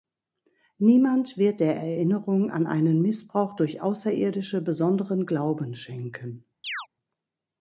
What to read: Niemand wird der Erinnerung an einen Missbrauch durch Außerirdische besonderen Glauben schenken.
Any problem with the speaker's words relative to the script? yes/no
no